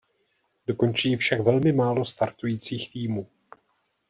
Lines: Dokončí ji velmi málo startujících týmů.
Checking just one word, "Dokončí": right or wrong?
right